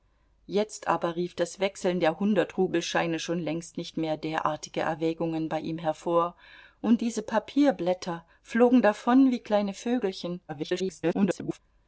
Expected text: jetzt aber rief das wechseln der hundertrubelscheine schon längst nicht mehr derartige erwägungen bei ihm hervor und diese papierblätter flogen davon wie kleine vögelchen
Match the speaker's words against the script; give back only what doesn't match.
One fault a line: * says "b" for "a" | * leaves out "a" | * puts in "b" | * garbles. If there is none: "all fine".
* garbles